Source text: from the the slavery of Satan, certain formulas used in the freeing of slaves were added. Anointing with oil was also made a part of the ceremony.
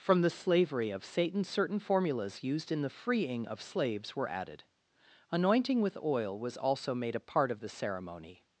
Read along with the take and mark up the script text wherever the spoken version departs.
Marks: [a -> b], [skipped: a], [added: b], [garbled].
from the [skipped: the] slavery of Satan, certain formulas used in the freeing of slaves were added. Anointing with oil was also made a part of the ceremony.